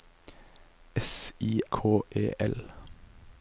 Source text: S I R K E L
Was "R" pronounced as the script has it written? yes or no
no